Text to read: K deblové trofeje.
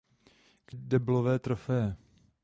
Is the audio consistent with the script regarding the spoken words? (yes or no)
yes